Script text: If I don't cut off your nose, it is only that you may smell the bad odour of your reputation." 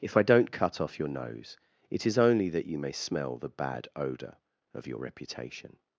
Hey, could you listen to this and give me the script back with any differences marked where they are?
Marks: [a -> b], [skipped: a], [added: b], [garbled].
If I don't cut off your nose, it is only that you may smell the bad odour of your reputation."